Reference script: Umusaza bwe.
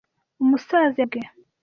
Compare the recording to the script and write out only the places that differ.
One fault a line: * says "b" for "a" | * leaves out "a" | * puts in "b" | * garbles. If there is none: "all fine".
all fine